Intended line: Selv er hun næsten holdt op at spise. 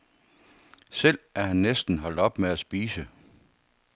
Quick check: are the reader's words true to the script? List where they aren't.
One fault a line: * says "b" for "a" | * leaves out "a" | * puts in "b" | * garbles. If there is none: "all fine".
* says "han" for "hun"
* puts in "med"